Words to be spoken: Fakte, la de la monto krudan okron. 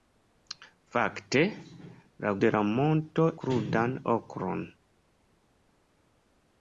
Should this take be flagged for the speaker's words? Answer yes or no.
no